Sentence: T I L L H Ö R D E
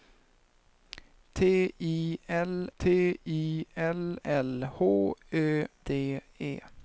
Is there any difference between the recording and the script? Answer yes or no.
yes